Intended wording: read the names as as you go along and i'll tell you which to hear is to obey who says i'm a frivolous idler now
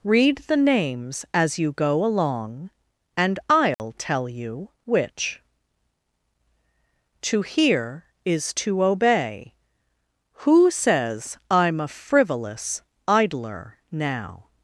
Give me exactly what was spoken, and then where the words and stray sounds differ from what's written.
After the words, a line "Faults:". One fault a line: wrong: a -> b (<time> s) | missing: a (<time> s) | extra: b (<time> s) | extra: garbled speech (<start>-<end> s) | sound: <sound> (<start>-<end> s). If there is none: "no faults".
read the names as you go along and i'll tell you which to hear is to obey who says i'm a frivolous idler now
Faults:
missing: as (1.6 s)
sound: dropout (3.7-3.8 s)